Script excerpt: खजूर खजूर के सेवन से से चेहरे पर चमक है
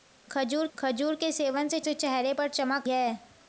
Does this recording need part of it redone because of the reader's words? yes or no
no